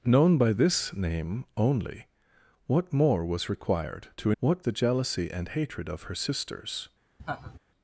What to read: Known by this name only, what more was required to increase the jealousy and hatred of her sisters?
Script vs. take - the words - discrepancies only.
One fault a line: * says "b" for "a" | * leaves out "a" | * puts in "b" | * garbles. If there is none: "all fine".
* says "what" for "increase"